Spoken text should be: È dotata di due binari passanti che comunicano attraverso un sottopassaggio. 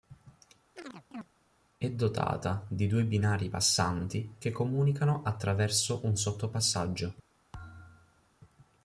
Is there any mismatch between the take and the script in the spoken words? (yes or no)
no